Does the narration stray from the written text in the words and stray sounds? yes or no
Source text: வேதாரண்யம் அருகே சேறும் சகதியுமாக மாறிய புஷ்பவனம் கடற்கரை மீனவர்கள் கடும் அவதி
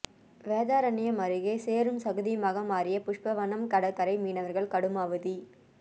no